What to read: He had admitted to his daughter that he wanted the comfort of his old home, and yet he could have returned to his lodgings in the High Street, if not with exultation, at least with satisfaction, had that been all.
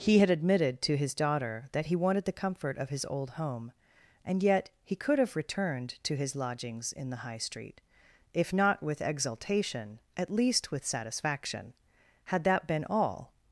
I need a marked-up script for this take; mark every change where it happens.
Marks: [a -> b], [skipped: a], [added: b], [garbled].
He had admitted to his daughter that he wanted the comfort of his old home, and yet he could have returned to his lodgings in the High Street, if not with exultation, at least with satisfaction, had that been all.